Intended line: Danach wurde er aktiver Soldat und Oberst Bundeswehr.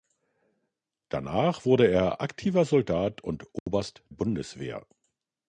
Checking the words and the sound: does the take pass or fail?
fail